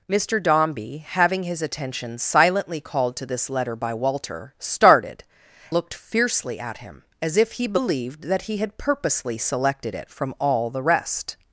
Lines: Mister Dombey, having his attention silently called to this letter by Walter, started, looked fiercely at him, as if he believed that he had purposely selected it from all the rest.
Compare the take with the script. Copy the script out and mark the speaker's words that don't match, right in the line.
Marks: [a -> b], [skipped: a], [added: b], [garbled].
Mister Dombey, having his attention silently called to this letter by Walter, started, looked fiercely at him, as if he believed that he had purposely selected it from all the rest.